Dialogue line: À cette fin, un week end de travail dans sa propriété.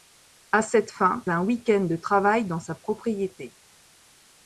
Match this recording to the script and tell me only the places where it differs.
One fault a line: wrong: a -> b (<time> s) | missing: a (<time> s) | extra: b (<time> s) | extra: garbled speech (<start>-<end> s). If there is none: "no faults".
no faults